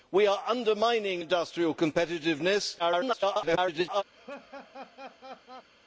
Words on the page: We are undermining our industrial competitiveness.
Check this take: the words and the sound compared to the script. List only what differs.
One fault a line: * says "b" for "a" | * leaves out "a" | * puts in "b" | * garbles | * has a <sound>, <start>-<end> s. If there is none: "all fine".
* leaves out "our"
* garbles
* has a laugh, 4.1-5.7 s